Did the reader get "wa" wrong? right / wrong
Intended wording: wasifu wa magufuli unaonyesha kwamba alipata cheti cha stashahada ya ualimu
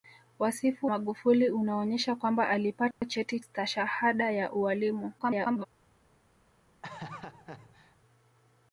wrong